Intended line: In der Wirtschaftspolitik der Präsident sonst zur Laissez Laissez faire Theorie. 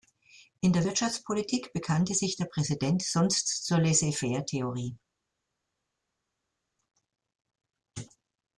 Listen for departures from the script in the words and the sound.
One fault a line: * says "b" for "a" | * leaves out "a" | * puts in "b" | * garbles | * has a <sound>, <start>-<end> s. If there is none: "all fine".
* puts in "bekannte sich"
* leaves out "Laissez"